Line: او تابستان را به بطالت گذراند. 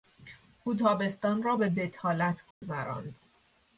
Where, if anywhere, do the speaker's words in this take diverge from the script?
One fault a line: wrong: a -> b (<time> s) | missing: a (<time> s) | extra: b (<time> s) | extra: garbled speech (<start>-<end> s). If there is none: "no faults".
no faults